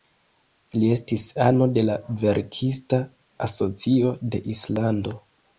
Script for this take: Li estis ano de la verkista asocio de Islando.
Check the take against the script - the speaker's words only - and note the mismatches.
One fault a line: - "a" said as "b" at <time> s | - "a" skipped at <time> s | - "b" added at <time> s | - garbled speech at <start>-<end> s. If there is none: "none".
none